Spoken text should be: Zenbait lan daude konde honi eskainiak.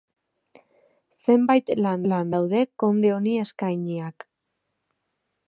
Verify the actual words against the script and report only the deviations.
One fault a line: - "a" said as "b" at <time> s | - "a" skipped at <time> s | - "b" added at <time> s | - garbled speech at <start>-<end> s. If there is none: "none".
- "lan" added at 2.1 s